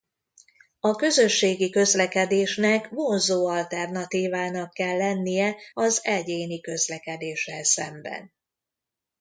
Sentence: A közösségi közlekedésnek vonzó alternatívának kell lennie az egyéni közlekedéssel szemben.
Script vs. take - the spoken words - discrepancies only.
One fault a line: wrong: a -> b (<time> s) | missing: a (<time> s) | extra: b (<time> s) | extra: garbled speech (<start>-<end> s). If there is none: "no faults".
no faults